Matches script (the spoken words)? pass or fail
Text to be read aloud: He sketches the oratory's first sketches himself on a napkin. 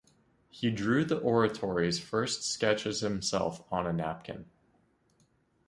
fail